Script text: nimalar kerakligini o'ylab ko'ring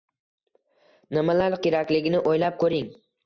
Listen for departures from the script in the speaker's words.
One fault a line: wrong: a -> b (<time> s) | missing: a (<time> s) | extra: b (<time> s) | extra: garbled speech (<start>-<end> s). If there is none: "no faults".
no faults